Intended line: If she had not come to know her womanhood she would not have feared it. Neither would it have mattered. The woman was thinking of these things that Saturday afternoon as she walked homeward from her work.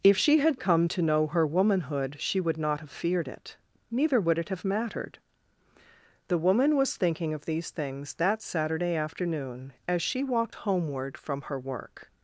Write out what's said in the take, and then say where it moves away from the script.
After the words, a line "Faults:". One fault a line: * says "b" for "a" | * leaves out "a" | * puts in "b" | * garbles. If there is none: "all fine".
If she had come to know her womanhood she would not have feared it. Neither would it have mattered. The woman was thinking of these things that Saturday afternoon as she walked homeward from her work.
Faults:
* leaves out "not"